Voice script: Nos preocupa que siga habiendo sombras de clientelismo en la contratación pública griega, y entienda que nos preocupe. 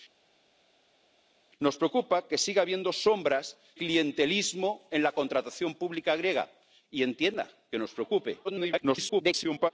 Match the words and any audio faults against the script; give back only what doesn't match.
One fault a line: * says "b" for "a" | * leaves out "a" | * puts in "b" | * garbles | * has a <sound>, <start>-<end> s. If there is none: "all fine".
* leaves out "de"
* garbles